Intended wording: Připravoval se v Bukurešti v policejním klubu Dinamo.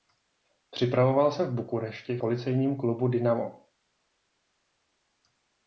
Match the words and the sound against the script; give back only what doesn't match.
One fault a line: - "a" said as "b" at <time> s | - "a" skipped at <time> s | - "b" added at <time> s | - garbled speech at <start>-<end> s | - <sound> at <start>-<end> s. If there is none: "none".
- "v" skipped at 2.2 s